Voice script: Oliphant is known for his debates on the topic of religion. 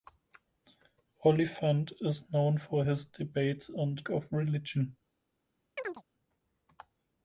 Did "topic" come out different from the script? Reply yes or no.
yes